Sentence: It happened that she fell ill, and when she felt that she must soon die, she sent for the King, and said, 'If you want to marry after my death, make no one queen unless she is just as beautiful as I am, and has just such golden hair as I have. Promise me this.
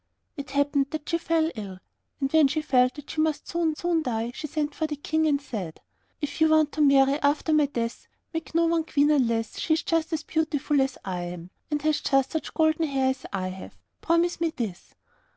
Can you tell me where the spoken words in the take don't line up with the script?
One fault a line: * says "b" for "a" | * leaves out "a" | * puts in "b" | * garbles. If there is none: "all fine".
* puts in "soon"